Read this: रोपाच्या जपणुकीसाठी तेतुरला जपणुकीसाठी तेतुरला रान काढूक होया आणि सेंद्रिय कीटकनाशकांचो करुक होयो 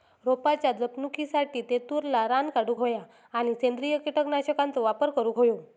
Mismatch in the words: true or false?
true